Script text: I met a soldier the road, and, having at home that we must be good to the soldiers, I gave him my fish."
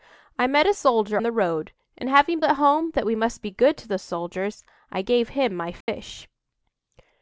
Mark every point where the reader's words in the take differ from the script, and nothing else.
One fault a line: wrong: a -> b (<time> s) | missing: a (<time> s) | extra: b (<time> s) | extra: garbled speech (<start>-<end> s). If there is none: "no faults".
no faults